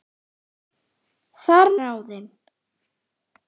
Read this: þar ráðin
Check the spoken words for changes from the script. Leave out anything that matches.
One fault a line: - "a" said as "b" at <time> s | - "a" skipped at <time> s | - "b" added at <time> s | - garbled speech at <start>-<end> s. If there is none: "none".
none